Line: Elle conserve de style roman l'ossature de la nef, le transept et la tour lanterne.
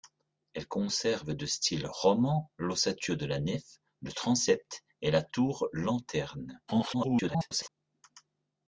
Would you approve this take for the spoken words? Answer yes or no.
no